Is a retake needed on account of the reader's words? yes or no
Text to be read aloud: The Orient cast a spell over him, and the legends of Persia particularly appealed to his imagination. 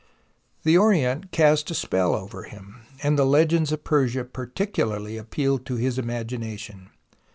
no